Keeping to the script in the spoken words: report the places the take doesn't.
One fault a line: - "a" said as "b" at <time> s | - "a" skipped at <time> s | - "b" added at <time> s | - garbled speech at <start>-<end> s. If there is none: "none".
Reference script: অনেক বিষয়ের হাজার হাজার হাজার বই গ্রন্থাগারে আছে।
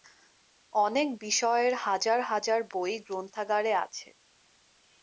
- "হাজার" skipped at 2.6 s